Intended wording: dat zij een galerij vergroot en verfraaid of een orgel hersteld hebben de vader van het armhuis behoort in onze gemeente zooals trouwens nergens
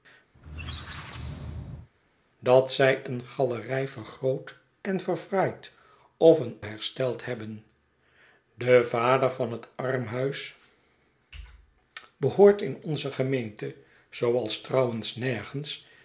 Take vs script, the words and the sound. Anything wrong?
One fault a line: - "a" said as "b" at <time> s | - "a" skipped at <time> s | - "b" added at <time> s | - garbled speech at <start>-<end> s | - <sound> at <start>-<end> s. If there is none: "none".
- squeak at 0.3-1.9 s
- "orgel" skipped at 6.6 s